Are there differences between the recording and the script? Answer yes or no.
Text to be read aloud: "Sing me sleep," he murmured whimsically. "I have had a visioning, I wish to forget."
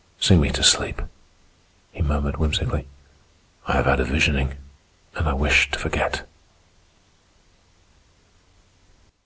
yes